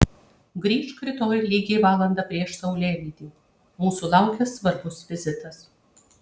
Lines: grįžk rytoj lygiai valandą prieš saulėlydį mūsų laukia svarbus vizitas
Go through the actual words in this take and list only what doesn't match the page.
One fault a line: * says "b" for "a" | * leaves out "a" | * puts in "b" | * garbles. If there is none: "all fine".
all fine